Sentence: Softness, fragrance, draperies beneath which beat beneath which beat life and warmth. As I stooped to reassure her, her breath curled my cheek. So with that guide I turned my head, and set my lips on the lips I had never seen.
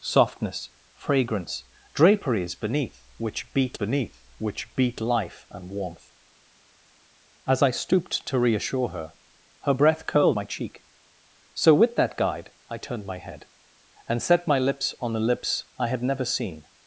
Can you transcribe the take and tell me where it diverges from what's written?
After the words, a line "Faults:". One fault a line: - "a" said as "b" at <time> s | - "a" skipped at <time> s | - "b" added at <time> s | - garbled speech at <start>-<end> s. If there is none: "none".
Softness, fragrance, draperies beneath which beat beneath which beat life and warmth. As I stooped to reassure her, her breath curled my cheek. So with that guide I turned my head, and set my lips on the lips I had never seen.
Faults:
none